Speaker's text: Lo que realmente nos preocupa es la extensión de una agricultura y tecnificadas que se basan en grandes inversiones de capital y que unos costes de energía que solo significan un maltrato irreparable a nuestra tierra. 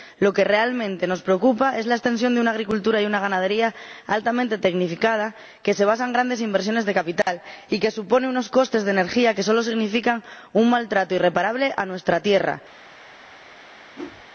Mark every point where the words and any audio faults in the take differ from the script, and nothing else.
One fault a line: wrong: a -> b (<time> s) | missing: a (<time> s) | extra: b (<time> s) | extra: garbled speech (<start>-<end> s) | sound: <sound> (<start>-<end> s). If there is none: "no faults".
extra: una ganadería altamente (3.0 s)
sound: dropout (7.2-7.3 s)
extra: suponen (7.9 s)
sound: whoosh (13.9-14.3 s)